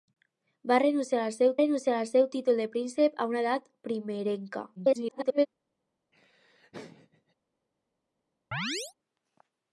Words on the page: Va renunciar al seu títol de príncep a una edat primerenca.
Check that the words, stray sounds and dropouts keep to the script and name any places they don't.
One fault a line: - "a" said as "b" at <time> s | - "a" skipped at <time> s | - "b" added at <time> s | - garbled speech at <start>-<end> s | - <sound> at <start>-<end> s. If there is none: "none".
- "renunciar al seu" added at 1.6 s
- garbled speech at 4.8-5.5 s
- laugh at 6.1-7.3 s
- chirp at 8.5-8.9 s